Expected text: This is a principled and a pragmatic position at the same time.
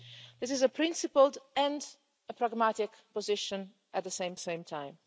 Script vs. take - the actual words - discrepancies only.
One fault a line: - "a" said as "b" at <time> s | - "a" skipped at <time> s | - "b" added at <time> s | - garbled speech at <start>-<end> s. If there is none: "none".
- "same" added at 4.4 s